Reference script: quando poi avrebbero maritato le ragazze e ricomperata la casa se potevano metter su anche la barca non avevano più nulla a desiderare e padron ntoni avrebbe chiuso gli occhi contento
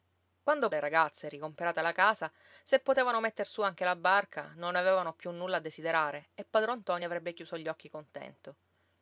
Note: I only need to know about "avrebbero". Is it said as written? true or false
false